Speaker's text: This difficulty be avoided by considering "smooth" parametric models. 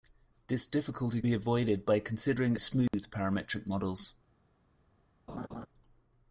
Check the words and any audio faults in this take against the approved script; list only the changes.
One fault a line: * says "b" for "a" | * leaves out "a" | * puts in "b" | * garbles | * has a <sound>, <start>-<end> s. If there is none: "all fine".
* has a dropout, 2.9-2.9 s
* has a laugh, 5.3-5.7 s